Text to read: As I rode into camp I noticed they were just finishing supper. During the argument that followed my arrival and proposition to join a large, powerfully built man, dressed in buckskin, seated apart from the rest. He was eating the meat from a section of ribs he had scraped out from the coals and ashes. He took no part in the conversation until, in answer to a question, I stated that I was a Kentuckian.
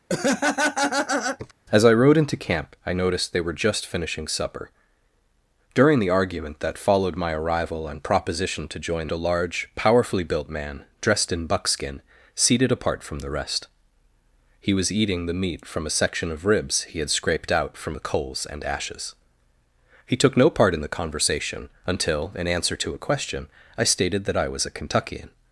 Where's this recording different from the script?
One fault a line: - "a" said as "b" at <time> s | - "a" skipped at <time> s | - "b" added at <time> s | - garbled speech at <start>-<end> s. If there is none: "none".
none